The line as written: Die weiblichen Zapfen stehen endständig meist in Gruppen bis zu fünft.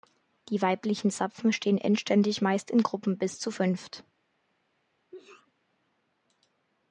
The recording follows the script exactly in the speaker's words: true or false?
true